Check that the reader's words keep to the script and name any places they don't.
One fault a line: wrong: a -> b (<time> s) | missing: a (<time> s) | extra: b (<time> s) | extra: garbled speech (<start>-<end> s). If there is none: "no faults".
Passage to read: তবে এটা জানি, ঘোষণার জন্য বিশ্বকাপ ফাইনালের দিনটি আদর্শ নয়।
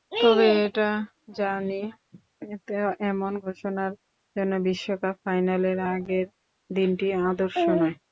extra: এমন (3.0 s)
extra: আগের (5.9 s)